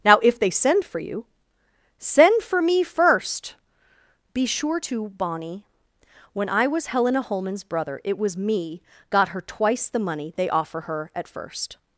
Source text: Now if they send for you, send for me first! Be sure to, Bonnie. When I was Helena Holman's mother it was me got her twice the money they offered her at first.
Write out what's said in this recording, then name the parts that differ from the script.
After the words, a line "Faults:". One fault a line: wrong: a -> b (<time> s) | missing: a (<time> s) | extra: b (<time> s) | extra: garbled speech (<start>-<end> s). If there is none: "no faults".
Now if they send for you, send for me first! Be sure to, Bonnie. When I was Helena Holman's brother it was me got her twice the money they offer her at first.
Faults:
wrong: mother -> brother (7.6 s)
wrong: offered -> offer (10.5 s)